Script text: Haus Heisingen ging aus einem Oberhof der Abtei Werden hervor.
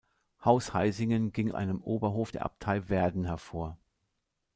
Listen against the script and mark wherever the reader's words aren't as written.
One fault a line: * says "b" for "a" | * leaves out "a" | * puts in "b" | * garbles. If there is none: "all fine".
* leaves out "aus"